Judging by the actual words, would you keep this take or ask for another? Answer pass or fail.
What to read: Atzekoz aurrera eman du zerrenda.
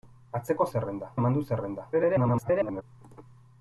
fail